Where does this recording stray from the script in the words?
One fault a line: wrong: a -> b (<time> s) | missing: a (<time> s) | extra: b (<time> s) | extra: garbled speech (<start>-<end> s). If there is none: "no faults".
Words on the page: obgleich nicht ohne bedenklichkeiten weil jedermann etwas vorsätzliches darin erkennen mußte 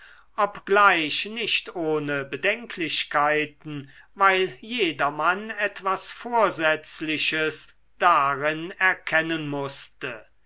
no faults